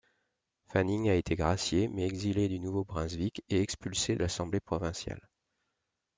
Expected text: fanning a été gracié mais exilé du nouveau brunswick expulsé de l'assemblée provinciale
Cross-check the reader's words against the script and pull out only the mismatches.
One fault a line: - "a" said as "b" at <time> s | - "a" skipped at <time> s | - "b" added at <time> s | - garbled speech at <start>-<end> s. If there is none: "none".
- "et" added at 3.5 s